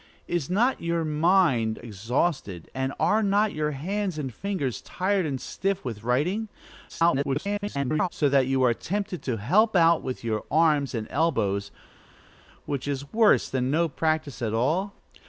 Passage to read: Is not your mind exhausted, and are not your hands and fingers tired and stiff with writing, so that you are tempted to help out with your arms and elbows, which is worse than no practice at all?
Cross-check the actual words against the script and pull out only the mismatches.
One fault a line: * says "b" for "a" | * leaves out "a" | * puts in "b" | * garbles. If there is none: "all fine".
* garbles